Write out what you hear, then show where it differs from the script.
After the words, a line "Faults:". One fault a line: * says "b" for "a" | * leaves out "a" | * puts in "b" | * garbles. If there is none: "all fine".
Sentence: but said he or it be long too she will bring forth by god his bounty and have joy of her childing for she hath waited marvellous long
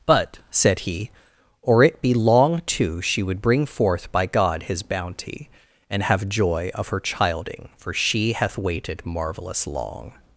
but said he or it be long too she would bring forth by god his bounty and have joy of her childing for she hath waited marvellous long
Faults:
* says "would" for "will"